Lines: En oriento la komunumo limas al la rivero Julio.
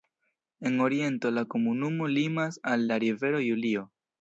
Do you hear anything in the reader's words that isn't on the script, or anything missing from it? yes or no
no